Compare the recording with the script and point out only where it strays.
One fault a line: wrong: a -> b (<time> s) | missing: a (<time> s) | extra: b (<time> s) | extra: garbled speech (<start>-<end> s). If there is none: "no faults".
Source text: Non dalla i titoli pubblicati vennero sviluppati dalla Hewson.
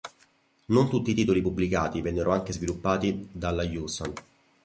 wrong: dalla -> tutti (0.9 s)
extra: anche (2.3 s)